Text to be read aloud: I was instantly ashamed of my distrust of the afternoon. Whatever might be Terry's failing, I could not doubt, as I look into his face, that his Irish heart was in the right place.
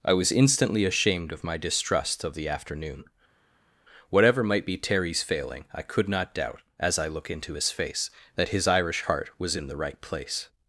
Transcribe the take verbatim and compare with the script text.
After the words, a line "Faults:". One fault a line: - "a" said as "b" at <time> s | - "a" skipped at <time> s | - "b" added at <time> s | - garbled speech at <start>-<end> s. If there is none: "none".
I was instantly ashamed of my distrust of the afternoon. Whatever might be Terry's failing, I could not doubt, as I look into his face, that his Irish heart was in the right place.
Faults:
none